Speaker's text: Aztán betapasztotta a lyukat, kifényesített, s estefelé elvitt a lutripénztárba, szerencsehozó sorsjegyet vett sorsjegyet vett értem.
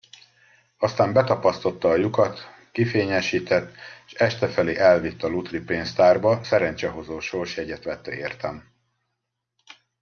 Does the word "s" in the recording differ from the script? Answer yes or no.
no